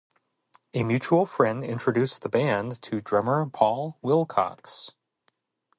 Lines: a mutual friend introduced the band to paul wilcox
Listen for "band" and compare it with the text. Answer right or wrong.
right